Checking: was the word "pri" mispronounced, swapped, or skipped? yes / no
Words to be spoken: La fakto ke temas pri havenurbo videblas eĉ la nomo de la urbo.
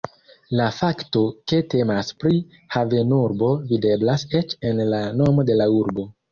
no